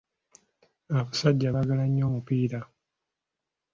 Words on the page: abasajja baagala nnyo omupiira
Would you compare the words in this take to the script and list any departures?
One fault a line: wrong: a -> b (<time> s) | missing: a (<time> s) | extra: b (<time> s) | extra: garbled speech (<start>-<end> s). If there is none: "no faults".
no faults